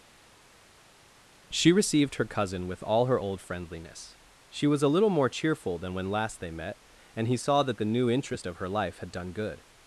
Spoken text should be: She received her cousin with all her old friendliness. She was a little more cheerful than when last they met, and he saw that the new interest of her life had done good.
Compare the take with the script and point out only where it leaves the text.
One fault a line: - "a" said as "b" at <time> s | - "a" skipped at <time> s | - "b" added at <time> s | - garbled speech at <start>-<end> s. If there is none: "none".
none